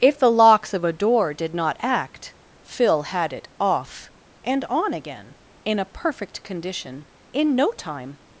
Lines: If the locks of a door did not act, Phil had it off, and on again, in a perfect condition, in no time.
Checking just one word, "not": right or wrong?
right